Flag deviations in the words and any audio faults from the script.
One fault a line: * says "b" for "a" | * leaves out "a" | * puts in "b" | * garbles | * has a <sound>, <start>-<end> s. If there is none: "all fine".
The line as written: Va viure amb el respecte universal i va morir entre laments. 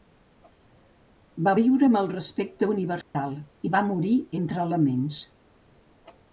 * has a dropout, 3.0-3.1 s